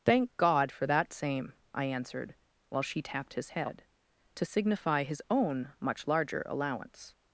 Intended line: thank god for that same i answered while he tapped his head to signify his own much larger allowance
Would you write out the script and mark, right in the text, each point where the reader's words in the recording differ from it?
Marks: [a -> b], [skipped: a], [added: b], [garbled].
thank god for that same i answered while [he -> she] tapped his head to signify his own much larger allowance